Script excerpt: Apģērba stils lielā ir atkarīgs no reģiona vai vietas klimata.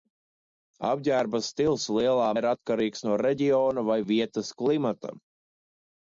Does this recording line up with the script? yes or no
yes